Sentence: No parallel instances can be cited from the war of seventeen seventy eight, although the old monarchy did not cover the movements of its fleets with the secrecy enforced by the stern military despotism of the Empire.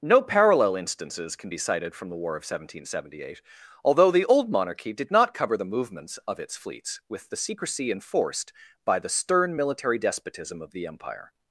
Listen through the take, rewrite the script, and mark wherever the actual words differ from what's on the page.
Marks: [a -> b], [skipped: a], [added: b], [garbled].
No parallel instances can be cited from the war of seventeen seventy eight, although the old monarchy did not cover the movements of its fleets with the secrecy enforced by the stern military despotism of the Empire.